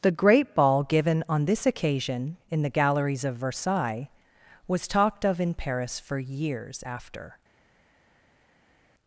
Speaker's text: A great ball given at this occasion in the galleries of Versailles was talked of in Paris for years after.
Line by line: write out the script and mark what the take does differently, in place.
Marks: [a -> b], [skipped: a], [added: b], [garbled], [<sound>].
[A -> The] great ball given [at -> on] this occasion in the galleries of Versailles was talked of in Paris for years after.